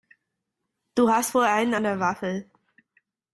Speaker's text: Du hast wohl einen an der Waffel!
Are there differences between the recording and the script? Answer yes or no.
no